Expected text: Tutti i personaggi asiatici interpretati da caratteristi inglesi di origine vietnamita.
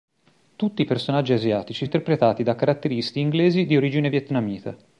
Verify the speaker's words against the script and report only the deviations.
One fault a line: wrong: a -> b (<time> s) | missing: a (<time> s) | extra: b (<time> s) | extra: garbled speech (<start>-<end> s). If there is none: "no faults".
no faults